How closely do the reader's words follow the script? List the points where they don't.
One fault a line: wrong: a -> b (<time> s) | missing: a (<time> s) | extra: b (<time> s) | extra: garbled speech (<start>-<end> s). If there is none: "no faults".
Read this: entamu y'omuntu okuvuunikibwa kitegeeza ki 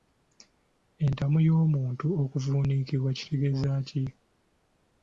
no faults